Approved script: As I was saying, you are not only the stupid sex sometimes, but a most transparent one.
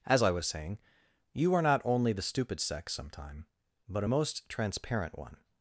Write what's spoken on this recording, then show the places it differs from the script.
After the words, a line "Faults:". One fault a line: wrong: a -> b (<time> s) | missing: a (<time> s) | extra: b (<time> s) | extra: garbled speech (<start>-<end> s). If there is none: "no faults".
As I was saying, you are not only the stupid sex sometime, but a most transparent one.
Faults:
wrong: sometimes -> sometime (2.9 s)